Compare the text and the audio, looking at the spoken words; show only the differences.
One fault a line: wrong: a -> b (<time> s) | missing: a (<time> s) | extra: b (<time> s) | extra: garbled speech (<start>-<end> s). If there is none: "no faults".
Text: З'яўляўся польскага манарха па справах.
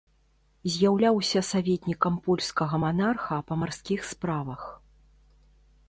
extra: саветнікам (1.5 s)
extra: марскіх (3.6 s)